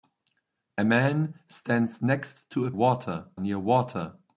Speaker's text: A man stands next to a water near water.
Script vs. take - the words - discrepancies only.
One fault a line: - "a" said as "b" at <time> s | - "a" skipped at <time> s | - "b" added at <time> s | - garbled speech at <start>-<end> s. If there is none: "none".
none